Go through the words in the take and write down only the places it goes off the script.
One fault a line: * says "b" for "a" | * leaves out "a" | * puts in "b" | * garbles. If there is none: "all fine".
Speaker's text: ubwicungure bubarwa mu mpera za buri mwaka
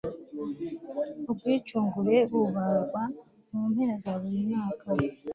all fine